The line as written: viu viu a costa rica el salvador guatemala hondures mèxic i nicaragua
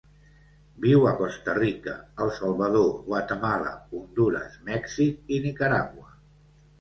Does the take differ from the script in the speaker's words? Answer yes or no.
yes